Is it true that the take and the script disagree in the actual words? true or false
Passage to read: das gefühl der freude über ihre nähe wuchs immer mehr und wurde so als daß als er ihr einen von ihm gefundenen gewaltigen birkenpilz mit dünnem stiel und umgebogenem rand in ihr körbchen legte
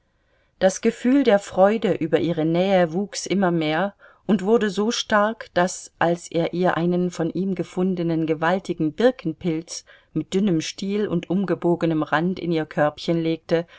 true